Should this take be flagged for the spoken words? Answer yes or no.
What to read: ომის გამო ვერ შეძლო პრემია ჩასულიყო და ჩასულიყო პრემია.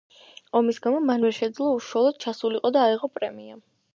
yes